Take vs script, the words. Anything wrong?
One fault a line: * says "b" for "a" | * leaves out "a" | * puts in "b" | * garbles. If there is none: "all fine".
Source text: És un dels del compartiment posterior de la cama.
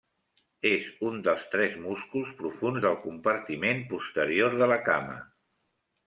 * puts in "tres músculs profunds"